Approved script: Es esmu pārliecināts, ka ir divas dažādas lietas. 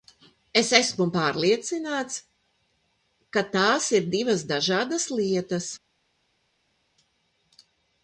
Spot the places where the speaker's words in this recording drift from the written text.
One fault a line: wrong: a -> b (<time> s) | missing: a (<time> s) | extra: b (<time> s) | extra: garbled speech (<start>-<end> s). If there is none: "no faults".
extra: tās (3.6 s)